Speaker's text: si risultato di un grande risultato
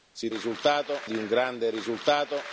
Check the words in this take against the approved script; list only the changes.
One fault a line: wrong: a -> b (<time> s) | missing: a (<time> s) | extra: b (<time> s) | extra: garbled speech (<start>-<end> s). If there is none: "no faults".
no faults